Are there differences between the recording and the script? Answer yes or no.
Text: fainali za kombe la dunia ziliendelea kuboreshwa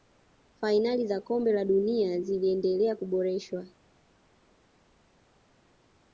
no